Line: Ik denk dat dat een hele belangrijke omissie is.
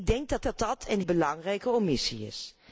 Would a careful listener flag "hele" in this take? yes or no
yes